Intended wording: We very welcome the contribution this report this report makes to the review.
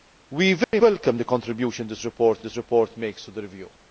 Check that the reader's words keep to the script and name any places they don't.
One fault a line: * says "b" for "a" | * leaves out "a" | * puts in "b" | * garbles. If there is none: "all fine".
all fine